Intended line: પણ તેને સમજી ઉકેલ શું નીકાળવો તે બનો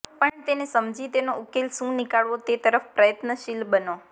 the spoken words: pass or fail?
fail